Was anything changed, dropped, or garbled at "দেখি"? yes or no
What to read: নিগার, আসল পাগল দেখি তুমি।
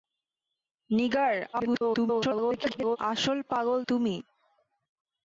yes